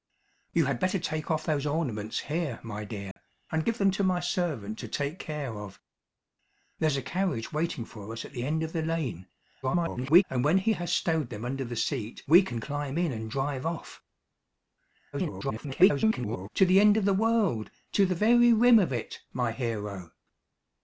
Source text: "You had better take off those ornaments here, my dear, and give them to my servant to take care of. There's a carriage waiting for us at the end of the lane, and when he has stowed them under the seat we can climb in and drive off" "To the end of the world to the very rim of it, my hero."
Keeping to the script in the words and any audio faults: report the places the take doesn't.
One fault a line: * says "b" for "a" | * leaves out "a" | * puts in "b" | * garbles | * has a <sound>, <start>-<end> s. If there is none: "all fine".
* has a dropout, 3.1-3.2 s
* garbles
* garbles